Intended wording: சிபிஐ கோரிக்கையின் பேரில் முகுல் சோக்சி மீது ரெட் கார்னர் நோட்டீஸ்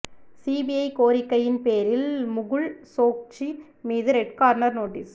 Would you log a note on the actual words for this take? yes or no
no